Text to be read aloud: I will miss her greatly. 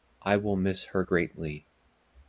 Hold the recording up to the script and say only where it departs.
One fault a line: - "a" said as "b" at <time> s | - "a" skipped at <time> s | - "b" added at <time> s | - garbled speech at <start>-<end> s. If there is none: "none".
none